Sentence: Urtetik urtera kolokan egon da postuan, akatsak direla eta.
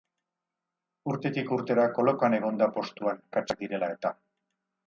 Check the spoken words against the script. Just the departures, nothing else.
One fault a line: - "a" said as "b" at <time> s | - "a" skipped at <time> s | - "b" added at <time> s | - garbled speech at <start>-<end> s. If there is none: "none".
none